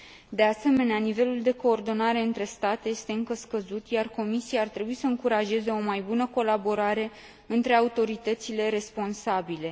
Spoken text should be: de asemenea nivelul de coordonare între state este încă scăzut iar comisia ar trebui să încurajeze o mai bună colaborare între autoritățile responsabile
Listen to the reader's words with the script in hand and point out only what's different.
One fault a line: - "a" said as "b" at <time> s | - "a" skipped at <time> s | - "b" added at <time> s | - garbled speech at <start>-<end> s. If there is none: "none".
none